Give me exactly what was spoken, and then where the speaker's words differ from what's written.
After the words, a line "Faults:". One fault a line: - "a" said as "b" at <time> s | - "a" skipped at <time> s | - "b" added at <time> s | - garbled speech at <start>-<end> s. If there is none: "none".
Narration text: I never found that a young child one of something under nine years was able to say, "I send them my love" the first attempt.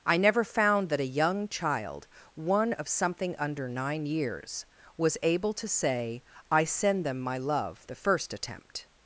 I never found that a young child one of something under nine years was able to say, "I send them my love" the first attempt.
Faults:
none